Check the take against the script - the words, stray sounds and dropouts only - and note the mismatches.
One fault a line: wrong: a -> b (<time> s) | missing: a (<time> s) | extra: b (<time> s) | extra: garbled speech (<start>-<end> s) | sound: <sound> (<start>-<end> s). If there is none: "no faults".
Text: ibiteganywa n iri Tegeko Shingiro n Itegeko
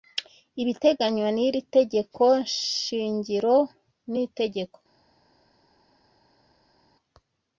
no faults